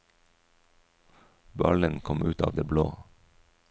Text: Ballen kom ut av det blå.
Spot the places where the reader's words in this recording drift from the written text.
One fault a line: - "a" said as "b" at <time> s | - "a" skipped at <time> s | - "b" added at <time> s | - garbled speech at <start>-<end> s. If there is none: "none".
none